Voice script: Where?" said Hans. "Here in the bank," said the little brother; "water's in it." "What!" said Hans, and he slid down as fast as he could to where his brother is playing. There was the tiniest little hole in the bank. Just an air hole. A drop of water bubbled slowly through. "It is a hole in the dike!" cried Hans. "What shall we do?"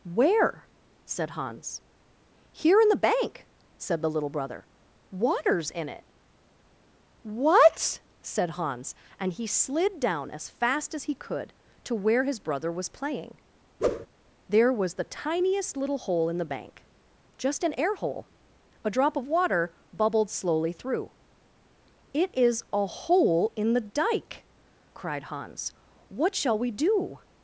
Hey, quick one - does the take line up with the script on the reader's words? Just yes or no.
no